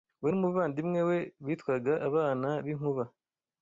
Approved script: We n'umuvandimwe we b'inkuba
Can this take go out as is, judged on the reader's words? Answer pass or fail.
fail